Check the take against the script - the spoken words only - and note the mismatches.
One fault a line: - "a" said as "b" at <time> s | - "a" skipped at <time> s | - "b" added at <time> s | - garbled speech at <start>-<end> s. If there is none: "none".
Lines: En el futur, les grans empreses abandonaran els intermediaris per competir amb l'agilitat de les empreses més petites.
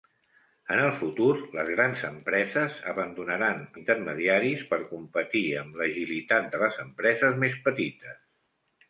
- "els" skipped at 3.6 s